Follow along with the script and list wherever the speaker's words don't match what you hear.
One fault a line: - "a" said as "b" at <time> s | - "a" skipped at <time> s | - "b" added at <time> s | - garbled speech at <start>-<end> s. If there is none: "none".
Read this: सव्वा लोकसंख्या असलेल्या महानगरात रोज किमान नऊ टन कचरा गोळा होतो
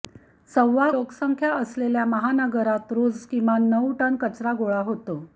none